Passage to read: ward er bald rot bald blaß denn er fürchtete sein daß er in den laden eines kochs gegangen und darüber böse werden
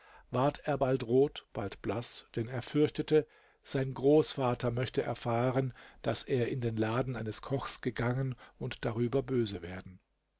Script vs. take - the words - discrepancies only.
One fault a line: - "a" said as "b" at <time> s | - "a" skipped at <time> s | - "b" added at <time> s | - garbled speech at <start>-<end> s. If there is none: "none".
- "großvater möchte erfahren" added at 3.9 s